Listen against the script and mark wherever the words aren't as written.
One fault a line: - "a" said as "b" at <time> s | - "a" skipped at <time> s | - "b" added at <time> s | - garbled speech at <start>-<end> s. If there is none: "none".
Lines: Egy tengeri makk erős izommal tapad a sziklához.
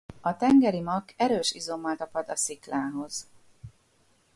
- "Egy" said as "A" at 0.2 s